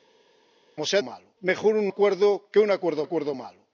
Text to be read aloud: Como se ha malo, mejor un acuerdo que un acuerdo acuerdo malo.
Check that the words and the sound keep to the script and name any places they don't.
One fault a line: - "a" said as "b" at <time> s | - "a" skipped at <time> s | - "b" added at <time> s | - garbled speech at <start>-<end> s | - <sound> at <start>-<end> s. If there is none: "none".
none